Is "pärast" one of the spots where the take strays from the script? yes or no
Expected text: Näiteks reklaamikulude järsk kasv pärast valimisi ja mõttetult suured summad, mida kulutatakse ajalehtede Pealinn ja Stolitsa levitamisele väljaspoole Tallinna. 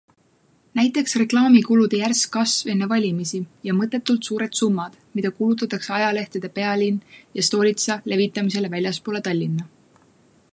yes